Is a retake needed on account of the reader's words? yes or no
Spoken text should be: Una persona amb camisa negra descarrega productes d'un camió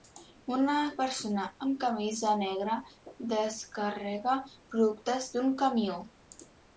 no